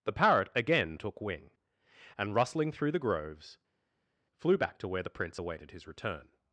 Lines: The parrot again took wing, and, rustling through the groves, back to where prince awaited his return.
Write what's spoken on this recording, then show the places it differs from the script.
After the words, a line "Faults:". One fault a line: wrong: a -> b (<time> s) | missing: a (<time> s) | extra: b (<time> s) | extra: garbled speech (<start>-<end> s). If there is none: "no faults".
The parrot again took wing, and, rustling through the groves, flew back to where the prince awaited his return.
Faults:
extra: flew (4.4 s)
extra: the (5.0 s)